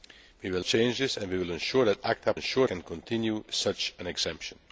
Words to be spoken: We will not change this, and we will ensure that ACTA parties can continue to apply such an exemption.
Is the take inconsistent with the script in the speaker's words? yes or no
yes